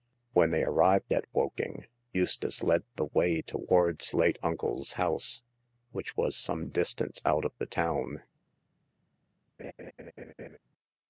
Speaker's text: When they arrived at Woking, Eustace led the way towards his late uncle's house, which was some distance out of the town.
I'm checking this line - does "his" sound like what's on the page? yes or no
no